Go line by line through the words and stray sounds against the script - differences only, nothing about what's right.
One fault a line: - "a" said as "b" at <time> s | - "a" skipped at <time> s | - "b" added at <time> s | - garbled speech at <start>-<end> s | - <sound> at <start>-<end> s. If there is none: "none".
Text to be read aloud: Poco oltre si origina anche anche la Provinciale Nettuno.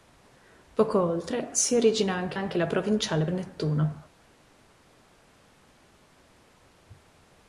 none